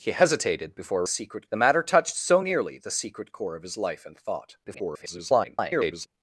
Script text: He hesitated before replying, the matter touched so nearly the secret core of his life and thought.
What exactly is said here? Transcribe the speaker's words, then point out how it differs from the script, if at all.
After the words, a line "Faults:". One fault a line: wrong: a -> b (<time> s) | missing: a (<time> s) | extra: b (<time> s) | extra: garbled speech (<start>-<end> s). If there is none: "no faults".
He hesitated before secret, the matter touched so nearly the secret core of his life and thought. [garbled]
Faults:
wrong: replying -> secret (1.1 s)
extra: garbled speech (4.6-6.1 s)